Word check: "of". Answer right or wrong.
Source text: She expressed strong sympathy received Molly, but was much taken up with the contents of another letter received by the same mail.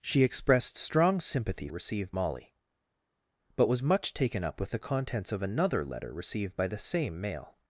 right